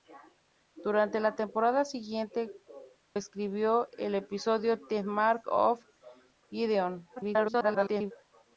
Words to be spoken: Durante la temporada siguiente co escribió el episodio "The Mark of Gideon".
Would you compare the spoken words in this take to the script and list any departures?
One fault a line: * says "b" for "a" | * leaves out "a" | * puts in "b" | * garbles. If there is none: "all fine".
* leaves out "co"
* garbles